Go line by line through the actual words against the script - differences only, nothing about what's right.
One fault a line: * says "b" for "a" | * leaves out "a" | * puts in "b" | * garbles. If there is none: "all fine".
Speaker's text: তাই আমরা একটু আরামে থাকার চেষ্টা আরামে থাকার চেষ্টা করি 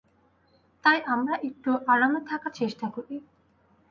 * leaves out "আরামে থাকার চেষ্টা"